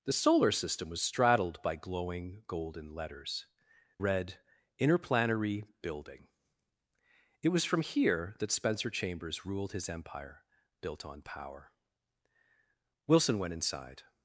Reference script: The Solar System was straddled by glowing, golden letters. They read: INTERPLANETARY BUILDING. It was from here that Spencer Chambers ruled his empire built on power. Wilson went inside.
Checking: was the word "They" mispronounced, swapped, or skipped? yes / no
yes